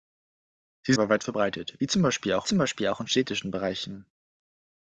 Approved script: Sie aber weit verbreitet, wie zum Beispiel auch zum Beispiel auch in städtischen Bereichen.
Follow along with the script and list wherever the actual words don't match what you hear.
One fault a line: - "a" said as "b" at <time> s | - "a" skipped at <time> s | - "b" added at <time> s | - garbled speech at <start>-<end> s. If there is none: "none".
none